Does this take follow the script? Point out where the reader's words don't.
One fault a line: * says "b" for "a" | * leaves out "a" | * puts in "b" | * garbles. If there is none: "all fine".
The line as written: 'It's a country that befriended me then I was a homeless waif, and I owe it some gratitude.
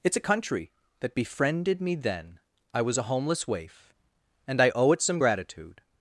all fine